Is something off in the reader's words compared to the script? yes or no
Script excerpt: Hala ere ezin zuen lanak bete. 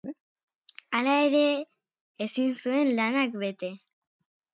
no